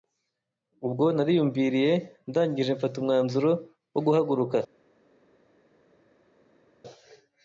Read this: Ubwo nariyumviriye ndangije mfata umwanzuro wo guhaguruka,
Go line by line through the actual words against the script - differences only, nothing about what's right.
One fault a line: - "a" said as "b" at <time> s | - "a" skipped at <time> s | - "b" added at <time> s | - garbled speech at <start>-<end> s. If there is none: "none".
none